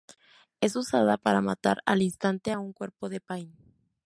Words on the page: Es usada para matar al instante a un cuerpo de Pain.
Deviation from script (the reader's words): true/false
false